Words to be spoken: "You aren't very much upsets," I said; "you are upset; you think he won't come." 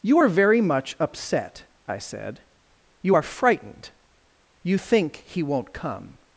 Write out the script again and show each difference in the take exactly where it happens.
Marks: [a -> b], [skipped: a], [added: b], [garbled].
"You [aren't -> are] very much [upsets," -> upset] I said; "you are [upset; -> frightened] you think he won't come."